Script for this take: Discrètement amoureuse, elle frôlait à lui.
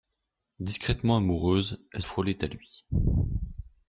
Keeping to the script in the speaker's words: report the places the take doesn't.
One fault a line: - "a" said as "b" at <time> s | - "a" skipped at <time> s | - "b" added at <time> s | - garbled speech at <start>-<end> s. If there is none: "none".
none